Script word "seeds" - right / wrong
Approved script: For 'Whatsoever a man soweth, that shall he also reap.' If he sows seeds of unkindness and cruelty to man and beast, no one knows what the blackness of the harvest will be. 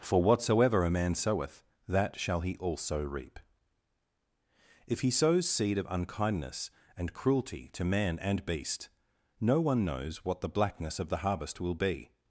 wrong